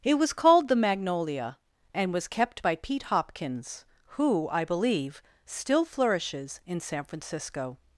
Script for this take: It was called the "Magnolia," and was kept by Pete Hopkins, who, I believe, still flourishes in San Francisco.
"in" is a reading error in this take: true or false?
false